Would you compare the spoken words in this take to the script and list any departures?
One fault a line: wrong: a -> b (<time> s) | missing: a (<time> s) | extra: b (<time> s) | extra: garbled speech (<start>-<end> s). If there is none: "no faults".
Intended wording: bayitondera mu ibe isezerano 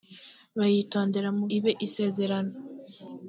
no faults